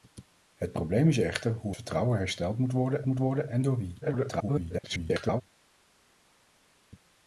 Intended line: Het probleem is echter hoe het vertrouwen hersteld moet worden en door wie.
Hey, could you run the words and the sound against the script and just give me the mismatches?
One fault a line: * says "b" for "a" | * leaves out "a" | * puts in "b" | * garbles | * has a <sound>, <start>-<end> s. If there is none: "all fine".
* leaves out "het"
* puts in "moet worden"
* garbles